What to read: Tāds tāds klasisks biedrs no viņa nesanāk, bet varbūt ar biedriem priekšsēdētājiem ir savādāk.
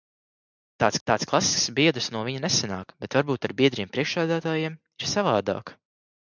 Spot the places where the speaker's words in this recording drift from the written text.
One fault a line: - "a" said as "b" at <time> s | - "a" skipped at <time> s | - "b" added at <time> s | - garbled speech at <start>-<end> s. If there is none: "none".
none